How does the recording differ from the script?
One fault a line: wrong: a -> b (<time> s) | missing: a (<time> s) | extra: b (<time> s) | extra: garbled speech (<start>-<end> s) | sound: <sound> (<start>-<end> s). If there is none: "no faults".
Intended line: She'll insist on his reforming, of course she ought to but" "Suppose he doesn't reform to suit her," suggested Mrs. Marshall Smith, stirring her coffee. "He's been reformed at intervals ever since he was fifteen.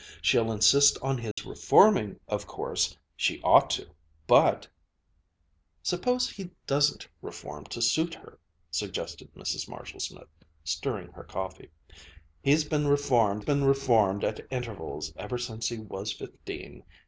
sound: dropout (1.3-1.4 s)
extra: been reformed (13.4 s)